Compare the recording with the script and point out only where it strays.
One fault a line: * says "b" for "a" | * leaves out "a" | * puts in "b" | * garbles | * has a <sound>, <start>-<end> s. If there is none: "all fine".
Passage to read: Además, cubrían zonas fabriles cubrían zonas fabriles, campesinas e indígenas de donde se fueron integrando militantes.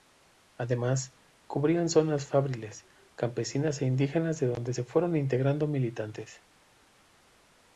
* leaves out "cubrían zonas fabriles"